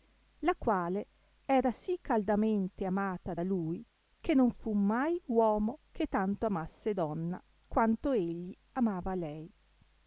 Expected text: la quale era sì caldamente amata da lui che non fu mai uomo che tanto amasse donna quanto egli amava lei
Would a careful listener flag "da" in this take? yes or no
no